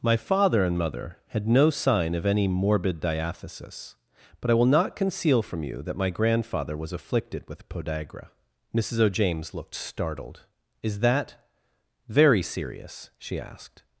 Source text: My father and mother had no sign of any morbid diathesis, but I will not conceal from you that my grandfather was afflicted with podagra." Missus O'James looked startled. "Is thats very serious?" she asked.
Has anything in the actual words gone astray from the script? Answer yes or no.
yes